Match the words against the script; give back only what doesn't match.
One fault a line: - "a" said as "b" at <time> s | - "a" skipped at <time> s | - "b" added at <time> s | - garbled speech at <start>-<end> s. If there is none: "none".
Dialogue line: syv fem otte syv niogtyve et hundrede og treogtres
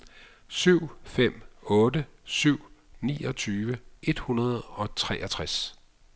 none